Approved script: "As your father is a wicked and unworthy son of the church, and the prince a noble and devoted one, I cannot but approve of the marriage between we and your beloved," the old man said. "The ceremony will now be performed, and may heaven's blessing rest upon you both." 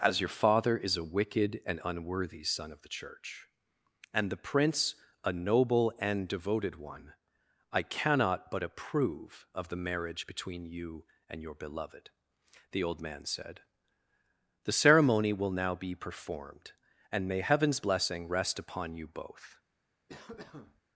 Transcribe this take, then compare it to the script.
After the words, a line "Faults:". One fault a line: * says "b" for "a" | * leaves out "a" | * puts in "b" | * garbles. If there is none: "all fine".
"As your father is a wicked and unworthy son of the church, and the prince a noble and devoted one, I cannot but approve of the marriage between you and your beloved," the old man said. "The ceremony will now be performed, and may heaven's blessing rest upon you both."
Faults:
* says "you" for "we"